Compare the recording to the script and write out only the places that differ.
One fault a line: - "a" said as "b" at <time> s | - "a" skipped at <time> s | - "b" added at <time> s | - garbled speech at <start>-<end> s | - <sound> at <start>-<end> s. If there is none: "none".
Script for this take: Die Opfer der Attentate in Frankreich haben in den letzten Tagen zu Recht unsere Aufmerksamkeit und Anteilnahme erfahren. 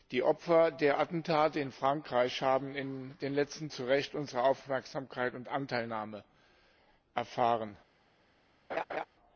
- "Tagen" skipped at 3.7 s
- laugh at 8.7-9.0 s